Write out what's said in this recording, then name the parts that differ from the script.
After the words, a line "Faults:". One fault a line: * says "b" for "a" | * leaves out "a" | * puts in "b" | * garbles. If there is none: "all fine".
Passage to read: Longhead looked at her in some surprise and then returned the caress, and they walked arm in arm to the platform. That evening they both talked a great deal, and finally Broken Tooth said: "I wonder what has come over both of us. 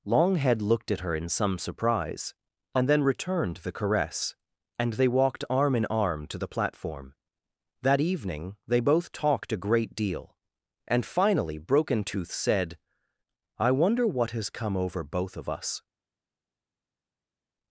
Longhead looked at her in some surprise and then returned the caress, and they walked arm in arm to the platform. That evening they both talked a great deal, and finally Broken Tooth said: "I wonder what has come over both of us.
Faults:
all fine